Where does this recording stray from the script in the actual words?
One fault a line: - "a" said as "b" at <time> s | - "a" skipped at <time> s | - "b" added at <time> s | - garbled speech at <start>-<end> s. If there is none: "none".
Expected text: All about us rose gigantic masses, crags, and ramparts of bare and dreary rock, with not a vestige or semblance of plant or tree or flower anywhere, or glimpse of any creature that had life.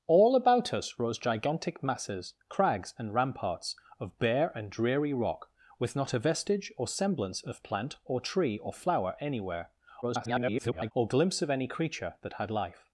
- garbled speech at 10.0-10.9 s